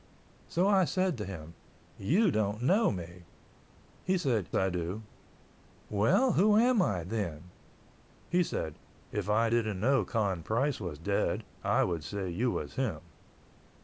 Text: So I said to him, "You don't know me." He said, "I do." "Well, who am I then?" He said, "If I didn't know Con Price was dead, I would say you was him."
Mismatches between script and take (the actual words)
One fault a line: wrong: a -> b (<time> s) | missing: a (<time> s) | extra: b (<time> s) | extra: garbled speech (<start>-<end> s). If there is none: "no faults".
no faults